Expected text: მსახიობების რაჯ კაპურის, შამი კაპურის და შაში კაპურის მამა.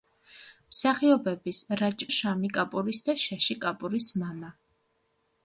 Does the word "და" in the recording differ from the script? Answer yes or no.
no